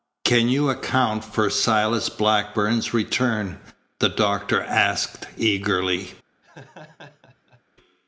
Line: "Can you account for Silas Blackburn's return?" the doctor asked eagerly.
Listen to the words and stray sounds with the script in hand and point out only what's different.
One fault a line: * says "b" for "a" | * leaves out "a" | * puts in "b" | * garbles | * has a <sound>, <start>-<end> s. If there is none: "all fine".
* has a laugh, 6.4-7.6 s